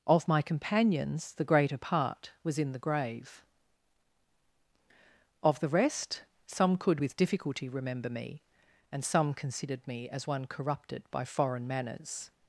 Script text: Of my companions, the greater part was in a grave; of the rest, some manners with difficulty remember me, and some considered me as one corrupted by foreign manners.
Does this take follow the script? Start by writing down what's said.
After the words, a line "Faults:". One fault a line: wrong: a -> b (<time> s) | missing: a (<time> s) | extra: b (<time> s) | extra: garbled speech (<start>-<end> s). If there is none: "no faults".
Of my companions, the greater part was in the grave; of the rest, some could with difficulty remember me, and some considered me as one corrupted by foreign manners.
Faults:
wrong: a -> the (2.7 s)
wrong: manners -> could (6.8 s)